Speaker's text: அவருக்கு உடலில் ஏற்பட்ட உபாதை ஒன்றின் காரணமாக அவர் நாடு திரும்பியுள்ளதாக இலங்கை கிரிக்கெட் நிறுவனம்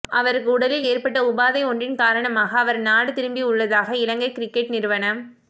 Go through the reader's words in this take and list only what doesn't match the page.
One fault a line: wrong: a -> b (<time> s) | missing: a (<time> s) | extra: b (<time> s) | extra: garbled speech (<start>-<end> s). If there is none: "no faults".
no faults